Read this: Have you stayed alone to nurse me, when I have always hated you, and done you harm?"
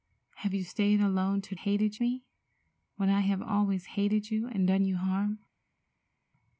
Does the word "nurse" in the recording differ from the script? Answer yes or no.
yes